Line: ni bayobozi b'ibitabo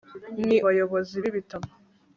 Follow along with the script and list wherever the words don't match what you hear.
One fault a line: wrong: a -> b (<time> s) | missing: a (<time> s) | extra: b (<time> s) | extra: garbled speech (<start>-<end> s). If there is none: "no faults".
no faults